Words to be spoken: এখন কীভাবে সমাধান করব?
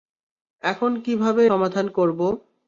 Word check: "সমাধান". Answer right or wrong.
right